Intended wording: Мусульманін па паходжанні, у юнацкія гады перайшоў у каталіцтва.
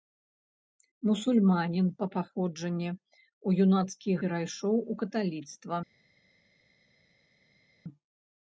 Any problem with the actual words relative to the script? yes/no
yes